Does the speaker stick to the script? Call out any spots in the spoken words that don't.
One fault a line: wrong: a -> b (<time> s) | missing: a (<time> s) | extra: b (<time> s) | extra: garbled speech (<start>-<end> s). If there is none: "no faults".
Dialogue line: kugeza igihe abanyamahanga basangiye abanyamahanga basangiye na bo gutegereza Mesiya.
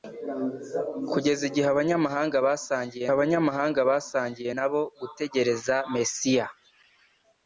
no faults